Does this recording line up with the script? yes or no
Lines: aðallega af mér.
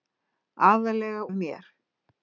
yes